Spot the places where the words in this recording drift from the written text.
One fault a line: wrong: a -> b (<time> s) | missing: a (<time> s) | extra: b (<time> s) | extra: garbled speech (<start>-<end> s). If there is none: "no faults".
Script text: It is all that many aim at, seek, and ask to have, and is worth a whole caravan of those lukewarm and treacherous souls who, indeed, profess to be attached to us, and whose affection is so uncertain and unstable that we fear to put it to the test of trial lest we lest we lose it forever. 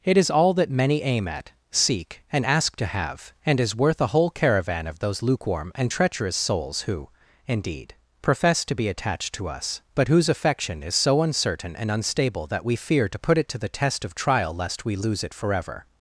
wrong: and -> but (9.9 s)
missing: lest we (15.0 s)